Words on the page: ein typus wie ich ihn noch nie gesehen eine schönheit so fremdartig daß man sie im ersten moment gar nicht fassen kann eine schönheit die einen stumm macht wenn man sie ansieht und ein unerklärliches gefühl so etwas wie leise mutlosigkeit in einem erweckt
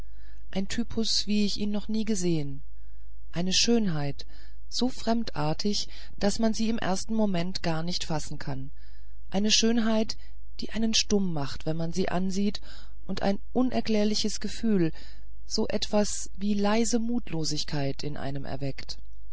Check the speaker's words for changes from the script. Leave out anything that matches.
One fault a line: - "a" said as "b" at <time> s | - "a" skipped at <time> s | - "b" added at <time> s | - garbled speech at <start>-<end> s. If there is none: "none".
none